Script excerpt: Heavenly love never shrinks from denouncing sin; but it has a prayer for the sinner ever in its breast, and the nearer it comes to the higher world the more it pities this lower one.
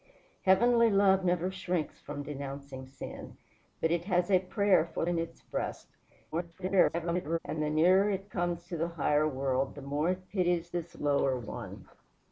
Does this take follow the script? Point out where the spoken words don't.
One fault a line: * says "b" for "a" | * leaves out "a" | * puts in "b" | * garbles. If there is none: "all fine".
* leaves out "the sinner ever"
* garbles